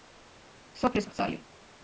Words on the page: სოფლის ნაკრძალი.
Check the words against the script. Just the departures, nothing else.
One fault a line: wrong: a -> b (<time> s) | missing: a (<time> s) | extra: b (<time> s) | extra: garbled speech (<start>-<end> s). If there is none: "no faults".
no faults